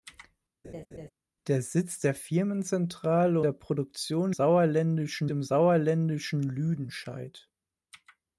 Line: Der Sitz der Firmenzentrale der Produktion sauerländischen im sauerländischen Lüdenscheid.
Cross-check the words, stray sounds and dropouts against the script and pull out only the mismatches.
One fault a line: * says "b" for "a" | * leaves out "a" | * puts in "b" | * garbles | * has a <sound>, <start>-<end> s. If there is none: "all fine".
* has a laugh, 0.6-1.1 s